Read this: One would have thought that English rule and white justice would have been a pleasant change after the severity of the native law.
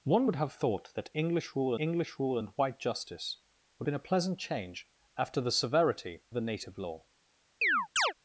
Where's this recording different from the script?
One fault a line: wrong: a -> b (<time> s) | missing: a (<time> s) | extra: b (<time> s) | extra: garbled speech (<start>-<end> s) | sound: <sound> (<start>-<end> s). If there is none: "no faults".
extra: English rule (1.8 s)
missing: have (3.9 s)
missing: of (6.2 s)
sound: chirp (7.6-8.1 s)